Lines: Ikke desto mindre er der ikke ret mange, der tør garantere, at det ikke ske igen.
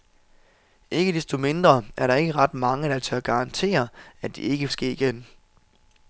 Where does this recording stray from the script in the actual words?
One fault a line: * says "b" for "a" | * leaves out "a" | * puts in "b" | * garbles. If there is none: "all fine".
all fine